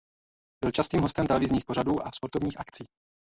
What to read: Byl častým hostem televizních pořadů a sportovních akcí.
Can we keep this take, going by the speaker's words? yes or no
yes